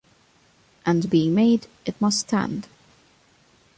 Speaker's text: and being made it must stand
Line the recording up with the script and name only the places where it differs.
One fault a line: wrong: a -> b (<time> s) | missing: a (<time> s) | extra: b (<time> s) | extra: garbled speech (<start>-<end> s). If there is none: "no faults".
no faults